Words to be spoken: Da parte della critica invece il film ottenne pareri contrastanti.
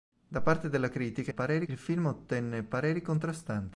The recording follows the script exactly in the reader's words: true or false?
false